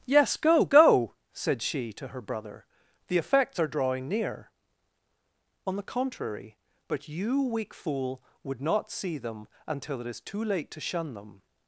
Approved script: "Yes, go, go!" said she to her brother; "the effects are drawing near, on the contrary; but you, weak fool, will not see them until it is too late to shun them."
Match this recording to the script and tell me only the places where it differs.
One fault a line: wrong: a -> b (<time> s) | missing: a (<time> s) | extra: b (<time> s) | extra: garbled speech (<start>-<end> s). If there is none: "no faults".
wrong: will -> would (8.4 s)